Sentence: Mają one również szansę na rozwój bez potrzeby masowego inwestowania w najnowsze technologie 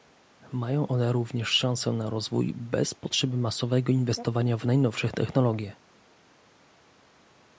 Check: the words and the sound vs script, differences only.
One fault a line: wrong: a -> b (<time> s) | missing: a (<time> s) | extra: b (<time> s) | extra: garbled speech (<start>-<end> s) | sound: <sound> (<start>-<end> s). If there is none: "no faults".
no faults